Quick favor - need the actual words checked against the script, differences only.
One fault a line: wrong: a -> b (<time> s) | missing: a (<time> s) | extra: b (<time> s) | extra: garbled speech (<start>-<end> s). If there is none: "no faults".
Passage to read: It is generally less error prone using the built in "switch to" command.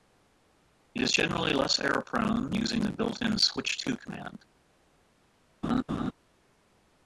no faults